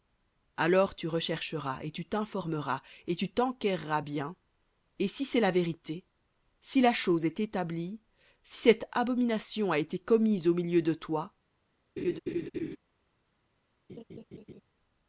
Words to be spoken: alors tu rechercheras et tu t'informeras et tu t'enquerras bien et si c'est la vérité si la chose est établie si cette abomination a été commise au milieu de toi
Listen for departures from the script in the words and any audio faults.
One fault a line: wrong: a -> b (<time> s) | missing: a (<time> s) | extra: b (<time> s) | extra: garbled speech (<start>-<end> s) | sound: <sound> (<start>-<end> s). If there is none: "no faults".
sound: laugh (12.0-12.8 s)
sound: laugh (13.9-14.6 s)